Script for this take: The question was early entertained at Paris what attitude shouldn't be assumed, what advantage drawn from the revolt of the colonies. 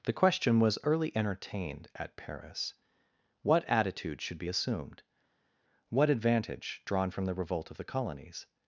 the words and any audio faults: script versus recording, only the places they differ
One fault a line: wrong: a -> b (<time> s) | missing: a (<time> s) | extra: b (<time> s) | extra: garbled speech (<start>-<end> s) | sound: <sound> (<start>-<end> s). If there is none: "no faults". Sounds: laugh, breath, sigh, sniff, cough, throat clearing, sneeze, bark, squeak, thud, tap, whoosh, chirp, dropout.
wrong: shouldn't -> should (4.2 s)